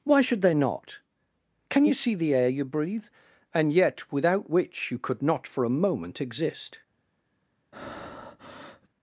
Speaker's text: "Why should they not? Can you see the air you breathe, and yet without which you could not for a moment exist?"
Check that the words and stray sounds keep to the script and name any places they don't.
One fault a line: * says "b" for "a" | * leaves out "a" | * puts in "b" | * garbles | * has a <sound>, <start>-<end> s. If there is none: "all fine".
* has a breath, 7.7-8.9 s